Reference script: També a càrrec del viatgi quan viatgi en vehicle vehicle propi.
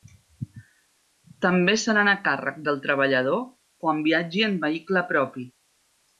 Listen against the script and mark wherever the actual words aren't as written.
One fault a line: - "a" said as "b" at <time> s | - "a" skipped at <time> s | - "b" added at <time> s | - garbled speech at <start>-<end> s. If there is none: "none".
- "seran" added at 1.8 s
- "viatgi" said as "treballador" at 2.9 s
- "vehicle" skipped at 5.0 s